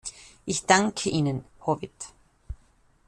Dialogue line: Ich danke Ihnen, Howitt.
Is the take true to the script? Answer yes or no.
yes